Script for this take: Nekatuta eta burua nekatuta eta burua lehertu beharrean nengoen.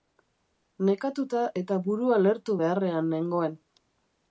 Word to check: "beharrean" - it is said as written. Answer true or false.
true